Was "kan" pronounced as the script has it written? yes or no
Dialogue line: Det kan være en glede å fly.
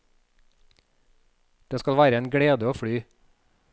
no